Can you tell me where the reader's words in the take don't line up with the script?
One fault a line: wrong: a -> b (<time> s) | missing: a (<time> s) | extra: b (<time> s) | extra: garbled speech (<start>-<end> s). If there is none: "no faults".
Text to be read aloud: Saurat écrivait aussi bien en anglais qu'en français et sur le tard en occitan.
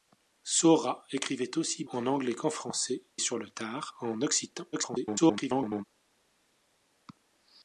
missing: bien (1.9 s)
missing: et (3.0 s)
extra: garbled speech (4.7-5.8 s)